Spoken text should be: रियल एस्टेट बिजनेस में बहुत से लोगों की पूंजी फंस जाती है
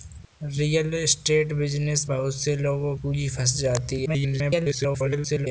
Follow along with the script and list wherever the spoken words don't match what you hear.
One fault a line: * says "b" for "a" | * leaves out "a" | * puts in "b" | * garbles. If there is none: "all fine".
* leaves out "में"
* leaves out "की"
* garbles